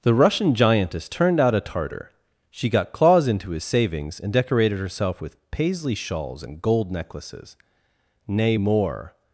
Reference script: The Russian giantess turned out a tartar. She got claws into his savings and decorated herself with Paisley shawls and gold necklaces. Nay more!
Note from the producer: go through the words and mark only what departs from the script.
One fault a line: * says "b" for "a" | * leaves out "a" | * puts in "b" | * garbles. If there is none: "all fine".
all fine